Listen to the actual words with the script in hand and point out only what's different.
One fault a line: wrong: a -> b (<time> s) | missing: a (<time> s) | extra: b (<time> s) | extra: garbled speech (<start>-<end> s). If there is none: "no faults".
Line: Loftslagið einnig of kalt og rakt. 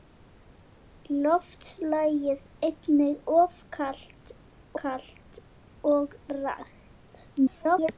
extra: kalt (4.8 s)
extra: garbled speech (7.4-7.9 s)